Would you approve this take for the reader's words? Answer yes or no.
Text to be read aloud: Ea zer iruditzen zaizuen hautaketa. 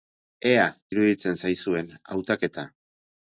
no